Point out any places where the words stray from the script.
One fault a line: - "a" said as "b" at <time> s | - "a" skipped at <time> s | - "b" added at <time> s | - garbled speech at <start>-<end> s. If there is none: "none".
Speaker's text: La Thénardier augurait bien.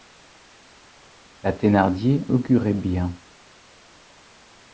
none